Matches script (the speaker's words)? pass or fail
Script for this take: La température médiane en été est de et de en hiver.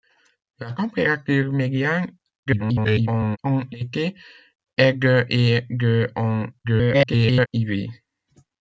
fail